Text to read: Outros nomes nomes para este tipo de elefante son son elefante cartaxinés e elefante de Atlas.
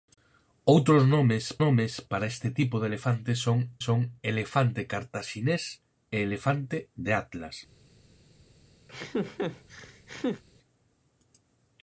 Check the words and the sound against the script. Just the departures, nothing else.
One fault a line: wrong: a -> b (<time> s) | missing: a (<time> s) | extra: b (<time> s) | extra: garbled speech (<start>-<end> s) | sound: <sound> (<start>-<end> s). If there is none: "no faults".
sound: laugh (8.9-10.4 s)